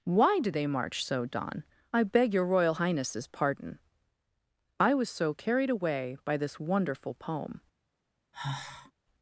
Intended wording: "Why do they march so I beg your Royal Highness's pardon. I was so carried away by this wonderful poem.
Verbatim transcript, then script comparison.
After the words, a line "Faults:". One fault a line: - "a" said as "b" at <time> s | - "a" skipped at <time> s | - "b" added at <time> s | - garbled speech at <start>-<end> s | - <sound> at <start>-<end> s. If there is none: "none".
"Why do they march so don I beg your Royal Highness's pardon. I was so carried away by this wonderful poem.
Faults:
- "don" added at 1.2 s
- sigh at 8.3-8.9 s